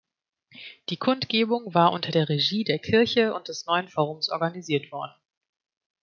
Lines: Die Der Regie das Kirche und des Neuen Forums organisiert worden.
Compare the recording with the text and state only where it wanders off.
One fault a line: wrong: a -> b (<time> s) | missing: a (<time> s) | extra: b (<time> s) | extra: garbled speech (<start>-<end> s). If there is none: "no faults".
extra: Kundgebung war unter (1.0 s)
wrong: das -> der (2.6 s)